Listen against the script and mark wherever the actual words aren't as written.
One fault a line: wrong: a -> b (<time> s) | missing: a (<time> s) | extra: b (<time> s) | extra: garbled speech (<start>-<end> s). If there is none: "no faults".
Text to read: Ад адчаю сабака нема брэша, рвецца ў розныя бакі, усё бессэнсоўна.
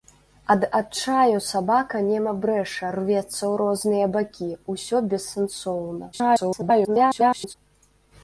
extra: garbled speech (6.1-7.5 s)